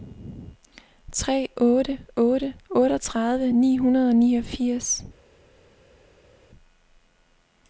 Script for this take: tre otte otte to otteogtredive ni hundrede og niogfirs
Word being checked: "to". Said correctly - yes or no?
no